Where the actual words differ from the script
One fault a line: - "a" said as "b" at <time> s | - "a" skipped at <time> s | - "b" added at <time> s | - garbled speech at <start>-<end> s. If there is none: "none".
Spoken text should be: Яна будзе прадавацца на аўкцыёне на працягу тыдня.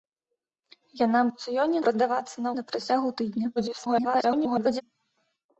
- "будзе" said as "аўкцыёне" at 1.3 s
- "аўкцыёне" skipped at 2.5 s
- garbled speech at 3.6-4.8 s